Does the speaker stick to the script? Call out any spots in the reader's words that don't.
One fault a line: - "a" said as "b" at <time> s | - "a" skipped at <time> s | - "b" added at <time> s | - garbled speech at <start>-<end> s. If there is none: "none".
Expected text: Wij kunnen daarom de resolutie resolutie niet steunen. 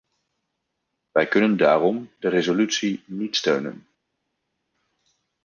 - "resolutie" skipped at 3.0 s